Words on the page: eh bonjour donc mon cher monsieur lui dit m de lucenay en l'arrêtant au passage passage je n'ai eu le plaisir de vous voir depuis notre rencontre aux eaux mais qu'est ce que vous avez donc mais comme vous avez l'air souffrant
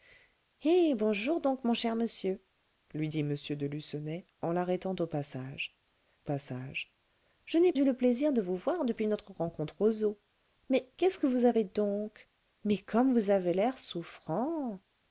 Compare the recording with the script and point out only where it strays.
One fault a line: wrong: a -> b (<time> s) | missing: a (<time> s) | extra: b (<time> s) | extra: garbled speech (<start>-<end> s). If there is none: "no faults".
no faults